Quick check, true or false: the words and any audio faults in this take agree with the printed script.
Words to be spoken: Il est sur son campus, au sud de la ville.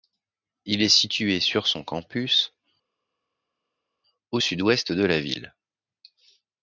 false